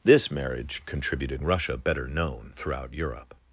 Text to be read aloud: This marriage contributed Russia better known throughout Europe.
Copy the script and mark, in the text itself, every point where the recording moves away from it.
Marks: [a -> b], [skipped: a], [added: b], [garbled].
This marriage contributed Russia better known throughout Europe.